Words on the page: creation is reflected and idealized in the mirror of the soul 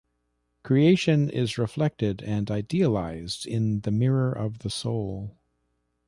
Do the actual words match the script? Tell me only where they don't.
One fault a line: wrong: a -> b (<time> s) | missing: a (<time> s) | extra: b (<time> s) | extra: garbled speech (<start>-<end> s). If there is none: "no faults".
no faults